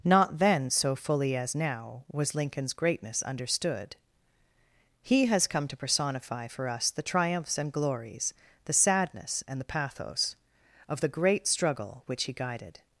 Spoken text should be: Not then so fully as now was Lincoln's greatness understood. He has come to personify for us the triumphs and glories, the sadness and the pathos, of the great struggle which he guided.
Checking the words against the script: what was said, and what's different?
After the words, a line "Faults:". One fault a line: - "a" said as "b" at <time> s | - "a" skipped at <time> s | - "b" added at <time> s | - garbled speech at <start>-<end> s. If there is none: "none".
Not then so fully as now was Lincoln's greatness understood. He has come to personify for us the triumphs and glories, the sadness and the pathos, of the great struggle which he guided.
Faults:
none